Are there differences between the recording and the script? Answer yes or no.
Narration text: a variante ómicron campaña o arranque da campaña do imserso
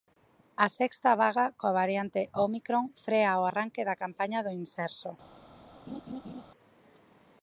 yes